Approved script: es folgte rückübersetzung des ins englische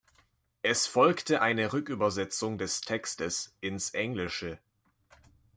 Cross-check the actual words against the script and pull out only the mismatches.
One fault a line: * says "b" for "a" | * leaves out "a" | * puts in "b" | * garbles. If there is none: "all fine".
* puts in "eine"
* puts in "textes"